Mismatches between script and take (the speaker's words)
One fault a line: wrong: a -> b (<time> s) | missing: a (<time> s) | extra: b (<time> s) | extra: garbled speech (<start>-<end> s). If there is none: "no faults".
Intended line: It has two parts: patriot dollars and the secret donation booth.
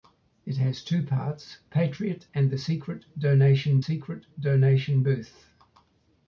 missing: dollars (2.2 s)
extra: secret donation (3.8 s)